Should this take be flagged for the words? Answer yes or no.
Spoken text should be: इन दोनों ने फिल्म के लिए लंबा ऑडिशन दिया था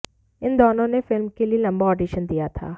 no